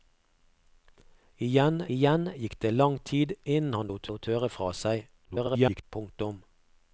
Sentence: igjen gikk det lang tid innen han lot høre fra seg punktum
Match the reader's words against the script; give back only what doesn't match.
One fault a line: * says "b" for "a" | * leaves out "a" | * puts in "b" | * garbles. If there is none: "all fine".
* puts in "igjen"
* puts in "lot"
* garbles